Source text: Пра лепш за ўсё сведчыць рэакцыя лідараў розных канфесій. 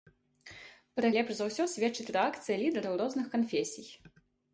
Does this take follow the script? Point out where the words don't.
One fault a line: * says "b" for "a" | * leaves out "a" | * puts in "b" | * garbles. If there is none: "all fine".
all fine